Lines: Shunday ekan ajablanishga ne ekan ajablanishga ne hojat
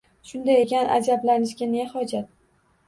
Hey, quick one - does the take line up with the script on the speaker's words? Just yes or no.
no